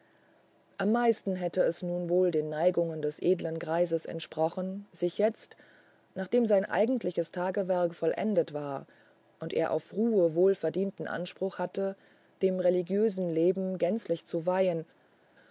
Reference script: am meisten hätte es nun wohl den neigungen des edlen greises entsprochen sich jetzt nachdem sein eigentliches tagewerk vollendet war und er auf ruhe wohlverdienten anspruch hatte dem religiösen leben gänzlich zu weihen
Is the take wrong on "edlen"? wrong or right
right